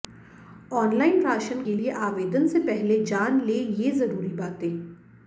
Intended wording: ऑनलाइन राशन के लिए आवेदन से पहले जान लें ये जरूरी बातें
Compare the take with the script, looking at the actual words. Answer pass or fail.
pass